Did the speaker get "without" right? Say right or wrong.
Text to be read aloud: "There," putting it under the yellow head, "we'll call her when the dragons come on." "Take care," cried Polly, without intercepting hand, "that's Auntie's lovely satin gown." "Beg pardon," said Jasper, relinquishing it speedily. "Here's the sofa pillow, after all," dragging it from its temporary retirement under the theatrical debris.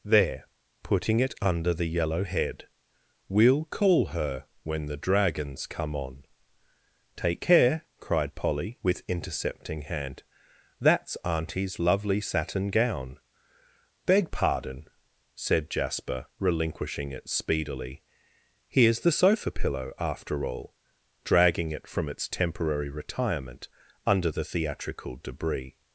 wrong